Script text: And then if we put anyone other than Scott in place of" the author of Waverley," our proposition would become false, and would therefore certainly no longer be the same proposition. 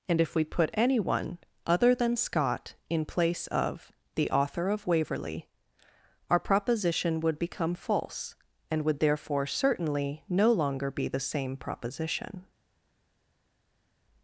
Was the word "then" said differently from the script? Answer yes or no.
yes